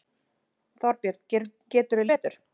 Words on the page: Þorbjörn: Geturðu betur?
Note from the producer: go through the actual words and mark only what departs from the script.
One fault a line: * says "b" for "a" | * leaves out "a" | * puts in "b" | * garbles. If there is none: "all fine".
all fine